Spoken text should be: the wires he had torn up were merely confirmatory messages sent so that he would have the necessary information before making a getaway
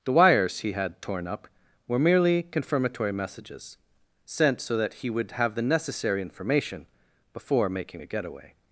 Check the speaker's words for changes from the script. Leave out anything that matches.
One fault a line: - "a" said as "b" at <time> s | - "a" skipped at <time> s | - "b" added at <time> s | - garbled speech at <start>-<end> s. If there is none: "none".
none